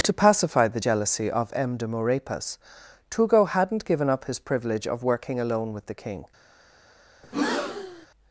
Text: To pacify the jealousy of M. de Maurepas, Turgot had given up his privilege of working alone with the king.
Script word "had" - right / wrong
wrong